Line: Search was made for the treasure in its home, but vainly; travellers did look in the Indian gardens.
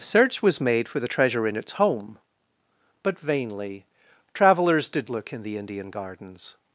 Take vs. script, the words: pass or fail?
pass